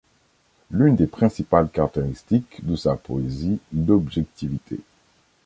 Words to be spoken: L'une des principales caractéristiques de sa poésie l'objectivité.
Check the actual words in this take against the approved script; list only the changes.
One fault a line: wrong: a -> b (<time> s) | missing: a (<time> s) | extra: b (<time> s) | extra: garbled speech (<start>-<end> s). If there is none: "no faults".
no faults